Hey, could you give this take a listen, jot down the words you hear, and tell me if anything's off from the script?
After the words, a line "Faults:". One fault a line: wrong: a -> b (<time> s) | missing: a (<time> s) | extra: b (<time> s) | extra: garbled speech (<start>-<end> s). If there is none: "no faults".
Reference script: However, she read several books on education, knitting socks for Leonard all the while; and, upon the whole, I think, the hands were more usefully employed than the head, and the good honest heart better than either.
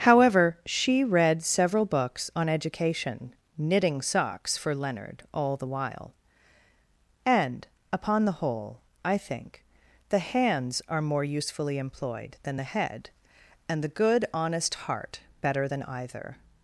However, she read several books on education, knitting socks for Leonard all the while; and, upon the whole, I think, the hands are more usefully employed than the head, and the good honest heart better than either.
Faults:
wrong: were -> are (10.9 s)